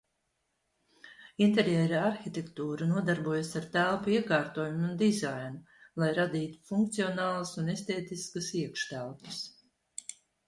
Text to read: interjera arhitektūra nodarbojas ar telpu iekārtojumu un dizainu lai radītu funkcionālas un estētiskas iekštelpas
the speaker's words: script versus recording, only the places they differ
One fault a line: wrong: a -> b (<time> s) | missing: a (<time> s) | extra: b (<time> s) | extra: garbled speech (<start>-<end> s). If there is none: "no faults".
no faults